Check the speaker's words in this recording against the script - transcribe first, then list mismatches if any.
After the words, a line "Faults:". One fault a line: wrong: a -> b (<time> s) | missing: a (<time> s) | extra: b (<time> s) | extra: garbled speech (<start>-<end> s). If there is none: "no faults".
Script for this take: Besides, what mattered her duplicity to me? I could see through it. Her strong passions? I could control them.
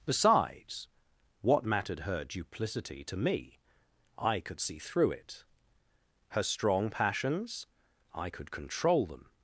Besides, what mattered her duplicity to me? I could see through it. Her strong passions? I could control them.
Faults:
no faults